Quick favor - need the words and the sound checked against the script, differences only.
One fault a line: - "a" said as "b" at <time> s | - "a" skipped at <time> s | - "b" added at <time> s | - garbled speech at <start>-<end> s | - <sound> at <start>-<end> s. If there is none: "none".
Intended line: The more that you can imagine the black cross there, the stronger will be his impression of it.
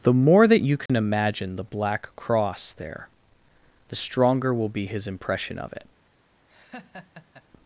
- dropout at 0.9-0.9 s
- laugh at 6.5-7.4 s